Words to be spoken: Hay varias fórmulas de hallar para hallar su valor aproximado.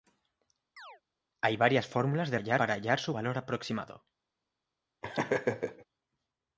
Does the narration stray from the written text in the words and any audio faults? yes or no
yes